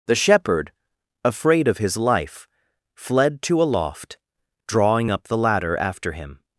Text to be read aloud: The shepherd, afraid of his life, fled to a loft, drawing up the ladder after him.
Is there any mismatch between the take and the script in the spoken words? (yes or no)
no